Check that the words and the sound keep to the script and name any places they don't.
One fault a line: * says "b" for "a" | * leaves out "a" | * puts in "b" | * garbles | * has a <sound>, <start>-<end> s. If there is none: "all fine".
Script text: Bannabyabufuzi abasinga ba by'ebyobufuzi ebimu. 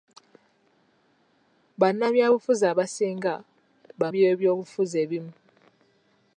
all fine